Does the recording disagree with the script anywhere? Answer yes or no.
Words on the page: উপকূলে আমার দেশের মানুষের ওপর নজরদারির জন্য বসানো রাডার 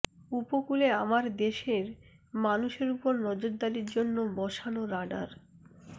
no